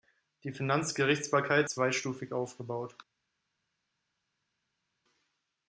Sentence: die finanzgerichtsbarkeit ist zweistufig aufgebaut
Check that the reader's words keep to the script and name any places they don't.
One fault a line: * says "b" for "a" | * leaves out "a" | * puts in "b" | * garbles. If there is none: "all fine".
* leaves out "ist"